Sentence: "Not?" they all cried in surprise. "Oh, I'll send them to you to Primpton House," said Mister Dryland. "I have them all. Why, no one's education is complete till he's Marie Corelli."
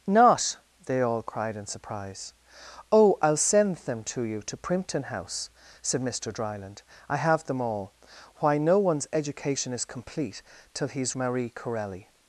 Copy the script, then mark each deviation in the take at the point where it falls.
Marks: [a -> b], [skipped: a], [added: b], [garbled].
"Not?" they all cried in surprise. "Oh, I'll send them to you to Primpton House," said Mister Dryland. "I have them all. Why, no one's education is complete till he's Marie Corelli."